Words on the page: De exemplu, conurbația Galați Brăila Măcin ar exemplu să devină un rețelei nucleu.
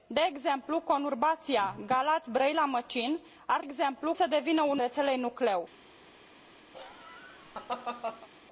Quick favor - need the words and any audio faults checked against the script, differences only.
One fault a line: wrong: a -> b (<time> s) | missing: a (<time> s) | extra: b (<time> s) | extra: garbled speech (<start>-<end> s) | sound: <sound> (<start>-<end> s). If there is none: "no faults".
sound: laugh (6.7-8.3 s)